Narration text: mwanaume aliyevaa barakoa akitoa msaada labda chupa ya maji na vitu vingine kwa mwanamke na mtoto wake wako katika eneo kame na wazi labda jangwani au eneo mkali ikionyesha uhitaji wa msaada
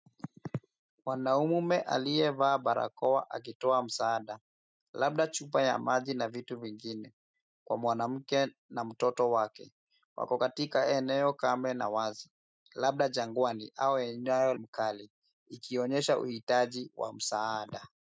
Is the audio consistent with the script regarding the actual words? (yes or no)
yes